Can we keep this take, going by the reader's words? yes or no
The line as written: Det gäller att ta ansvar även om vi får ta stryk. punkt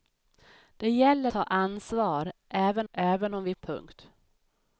no